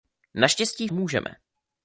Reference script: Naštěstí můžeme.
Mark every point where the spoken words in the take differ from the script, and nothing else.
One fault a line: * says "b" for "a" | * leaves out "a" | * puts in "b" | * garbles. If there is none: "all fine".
all fine